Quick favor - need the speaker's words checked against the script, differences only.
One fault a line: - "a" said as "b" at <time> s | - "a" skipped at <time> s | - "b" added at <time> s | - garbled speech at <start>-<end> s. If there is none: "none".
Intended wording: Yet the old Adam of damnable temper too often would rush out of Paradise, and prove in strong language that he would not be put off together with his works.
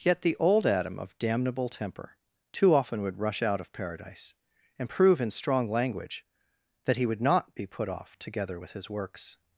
none